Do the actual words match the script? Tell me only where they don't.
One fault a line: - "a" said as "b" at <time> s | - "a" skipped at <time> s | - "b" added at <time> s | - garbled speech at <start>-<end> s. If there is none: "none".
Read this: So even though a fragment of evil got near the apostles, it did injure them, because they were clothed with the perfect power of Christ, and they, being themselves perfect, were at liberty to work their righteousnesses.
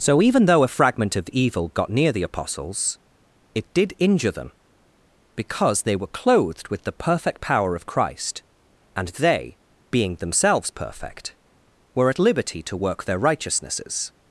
none